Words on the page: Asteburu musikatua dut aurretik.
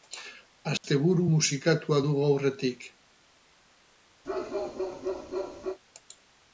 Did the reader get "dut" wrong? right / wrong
wrong